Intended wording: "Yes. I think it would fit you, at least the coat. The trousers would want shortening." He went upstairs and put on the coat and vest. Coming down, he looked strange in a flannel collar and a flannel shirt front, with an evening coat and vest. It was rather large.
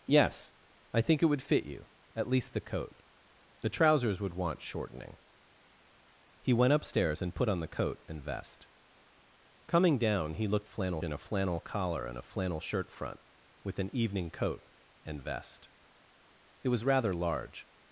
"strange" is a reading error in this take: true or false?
true